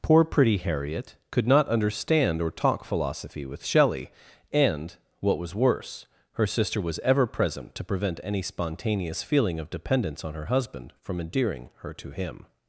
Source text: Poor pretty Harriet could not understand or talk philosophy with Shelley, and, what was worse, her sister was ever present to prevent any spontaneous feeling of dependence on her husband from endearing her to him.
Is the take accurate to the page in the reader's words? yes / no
yes